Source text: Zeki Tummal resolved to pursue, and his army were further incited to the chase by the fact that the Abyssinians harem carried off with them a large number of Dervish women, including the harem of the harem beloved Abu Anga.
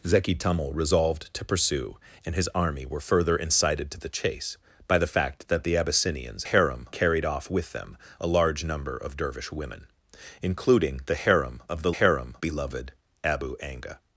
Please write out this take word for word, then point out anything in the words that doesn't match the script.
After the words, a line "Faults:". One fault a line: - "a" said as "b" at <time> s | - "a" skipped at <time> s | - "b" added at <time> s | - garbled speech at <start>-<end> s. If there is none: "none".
Zeki Tummal resolved to pursue, and his army were further incited to the chase by the fact that the Abyssinians harem carried off with them a large number of Dervish women, including the harem of the harem beloved Abu Anga.
Faults:
none